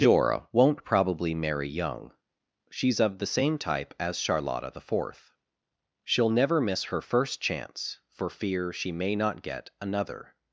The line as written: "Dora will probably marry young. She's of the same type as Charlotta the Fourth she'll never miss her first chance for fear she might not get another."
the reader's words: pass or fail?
fail